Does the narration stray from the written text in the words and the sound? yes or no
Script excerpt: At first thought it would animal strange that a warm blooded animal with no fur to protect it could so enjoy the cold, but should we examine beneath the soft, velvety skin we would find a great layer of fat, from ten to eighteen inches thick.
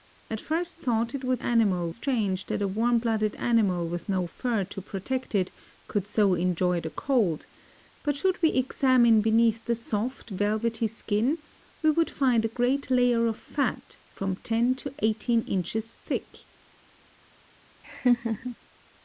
yes